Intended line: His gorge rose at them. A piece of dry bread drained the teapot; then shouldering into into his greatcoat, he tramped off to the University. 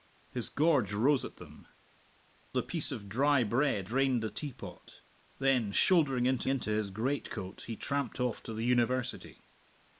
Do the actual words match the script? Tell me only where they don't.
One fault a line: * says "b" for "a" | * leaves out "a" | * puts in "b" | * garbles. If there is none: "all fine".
all fine